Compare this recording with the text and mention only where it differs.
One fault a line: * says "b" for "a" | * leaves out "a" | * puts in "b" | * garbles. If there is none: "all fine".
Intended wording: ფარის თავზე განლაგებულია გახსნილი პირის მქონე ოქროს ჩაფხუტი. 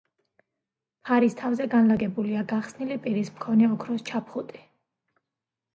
all fine